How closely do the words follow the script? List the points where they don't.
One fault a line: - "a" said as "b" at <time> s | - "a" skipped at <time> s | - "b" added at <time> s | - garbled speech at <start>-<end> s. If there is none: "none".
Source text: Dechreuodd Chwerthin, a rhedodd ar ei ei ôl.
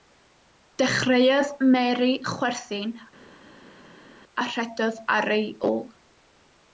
- "Mary" added at 1.8 s
- "ei" skipped at 5.5 s